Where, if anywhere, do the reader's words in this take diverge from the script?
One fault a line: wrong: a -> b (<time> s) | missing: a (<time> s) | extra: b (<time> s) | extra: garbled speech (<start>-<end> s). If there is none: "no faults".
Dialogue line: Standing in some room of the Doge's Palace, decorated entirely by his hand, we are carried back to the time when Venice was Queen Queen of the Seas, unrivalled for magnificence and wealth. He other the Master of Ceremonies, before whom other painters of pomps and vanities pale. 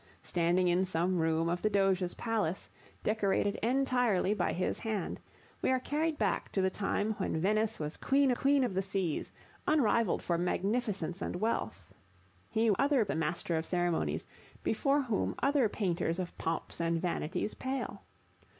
no faults